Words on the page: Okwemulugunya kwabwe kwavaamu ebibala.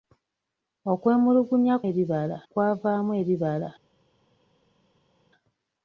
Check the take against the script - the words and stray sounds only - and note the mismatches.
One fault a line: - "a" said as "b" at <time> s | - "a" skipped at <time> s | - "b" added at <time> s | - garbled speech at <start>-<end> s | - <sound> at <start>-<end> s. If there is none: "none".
- "kwabwe" said as "ebibala" at 1.9 s